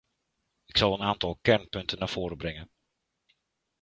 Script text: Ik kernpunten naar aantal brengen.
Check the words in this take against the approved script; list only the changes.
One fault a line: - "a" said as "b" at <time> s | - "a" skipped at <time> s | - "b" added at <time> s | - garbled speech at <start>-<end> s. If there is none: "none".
- "zal een aantal" added at 0.8 s
- "aantal" said as "voren" at 2.1 s